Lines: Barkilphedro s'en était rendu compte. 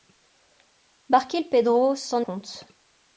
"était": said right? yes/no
no